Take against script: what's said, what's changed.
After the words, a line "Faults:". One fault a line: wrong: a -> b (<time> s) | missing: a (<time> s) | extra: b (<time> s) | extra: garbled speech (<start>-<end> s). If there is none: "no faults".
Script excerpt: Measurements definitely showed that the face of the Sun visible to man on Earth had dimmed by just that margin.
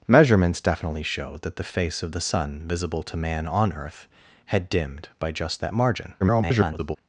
Measurements definitely showed that the face of the Sun visible to man on Earth had dimmed by just that margin. [garbled]
Faults:
extra: garbled speech (6.2-7.0 s)